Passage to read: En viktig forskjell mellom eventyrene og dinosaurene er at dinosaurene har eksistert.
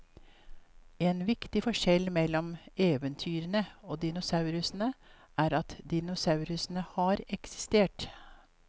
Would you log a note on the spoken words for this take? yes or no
no